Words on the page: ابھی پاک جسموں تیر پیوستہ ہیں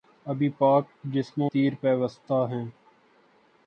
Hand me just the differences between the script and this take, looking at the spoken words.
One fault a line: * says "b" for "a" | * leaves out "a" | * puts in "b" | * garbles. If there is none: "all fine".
all fine